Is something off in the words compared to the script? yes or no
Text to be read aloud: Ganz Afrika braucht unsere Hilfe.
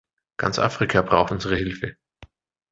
no